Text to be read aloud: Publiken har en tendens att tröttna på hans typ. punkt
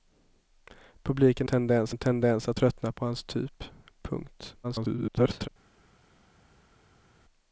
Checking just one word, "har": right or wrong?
wrong